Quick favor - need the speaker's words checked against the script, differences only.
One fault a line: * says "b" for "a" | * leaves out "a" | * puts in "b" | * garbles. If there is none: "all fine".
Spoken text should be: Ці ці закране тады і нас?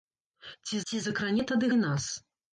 all fine